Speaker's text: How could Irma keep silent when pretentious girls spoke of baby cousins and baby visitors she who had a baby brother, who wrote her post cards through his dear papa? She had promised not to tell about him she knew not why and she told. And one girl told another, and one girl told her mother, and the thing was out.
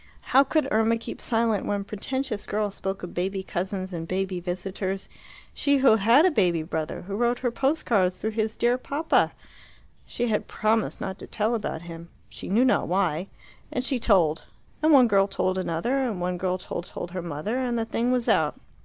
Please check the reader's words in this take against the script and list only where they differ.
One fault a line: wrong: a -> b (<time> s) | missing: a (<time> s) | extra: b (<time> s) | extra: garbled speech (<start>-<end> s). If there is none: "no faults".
extra: told (16.8 s)